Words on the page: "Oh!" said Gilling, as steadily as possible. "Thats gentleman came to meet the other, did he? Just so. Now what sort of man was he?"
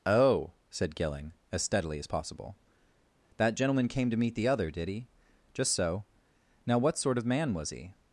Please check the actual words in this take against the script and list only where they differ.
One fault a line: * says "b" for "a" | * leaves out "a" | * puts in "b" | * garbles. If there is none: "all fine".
* says "That" for "Thats"